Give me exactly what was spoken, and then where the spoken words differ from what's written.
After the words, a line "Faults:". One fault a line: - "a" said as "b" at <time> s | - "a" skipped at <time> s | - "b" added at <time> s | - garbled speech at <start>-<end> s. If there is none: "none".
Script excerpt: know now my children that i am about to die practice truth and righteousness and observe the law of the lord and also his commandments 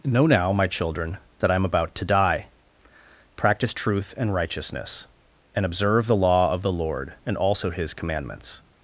know now my children that i am about to die practice truth and righteousness and observe the law of the lord and also his commandments
Faults:
none